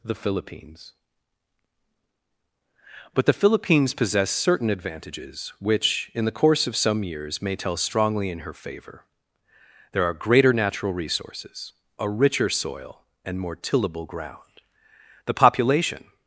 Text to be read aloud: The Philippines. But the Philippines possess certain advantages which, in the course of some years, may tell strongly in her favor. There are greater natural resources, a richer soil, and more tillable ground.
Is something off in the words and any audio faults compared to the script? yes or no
yes